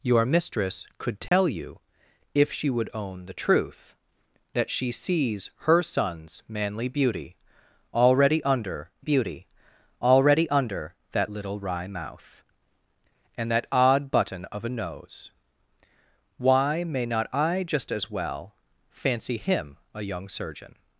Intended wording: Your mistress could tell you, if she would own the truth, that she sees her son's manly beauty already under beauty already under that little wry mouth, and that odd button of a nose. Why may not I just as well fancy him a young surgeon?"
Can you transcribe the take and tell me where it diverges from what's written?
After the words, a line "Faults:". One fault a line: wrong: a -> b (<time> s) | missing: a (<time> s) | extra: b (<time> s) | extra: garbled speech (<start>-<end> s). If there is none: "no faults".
Your mistress could tell you, if she would own the truth, that she sees her son's manly beauty already under beauty already under that little wry mouth, and that odd button of a nose. Why may not I just as well fancy him a young surgeon?"
Faults:
no faults